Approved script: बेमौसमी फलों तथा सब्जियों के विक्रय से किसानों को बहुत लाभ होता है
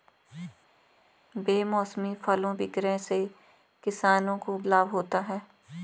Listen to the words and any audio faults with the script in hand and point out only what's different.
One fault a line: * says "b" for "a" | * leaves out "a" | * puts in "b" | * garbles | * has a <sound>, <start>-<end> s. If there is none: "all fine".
* leaves out "तथा सब्जियों के"
* leaves out "बहुत"